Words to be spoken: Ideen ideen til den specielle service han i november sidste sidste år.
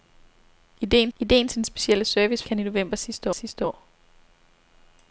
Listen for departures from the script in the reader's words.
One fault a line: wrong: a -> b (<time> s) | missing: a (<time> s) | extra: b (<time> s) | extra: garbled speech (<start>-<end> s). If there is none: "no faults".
no faults